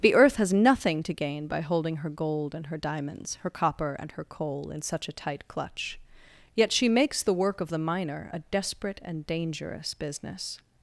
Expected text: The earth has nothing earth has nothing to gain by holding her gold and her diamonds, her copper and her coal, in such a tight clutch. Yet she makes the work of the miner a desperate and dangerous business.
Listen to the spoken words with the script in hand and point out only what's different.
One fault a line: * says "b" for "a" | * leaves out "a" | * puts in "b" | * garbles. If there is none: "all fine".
* leaves out "earth has nothing"